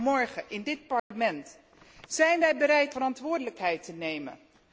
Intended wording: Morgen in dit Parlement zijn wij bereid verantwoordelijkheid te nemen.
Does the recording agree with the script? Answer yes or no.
yes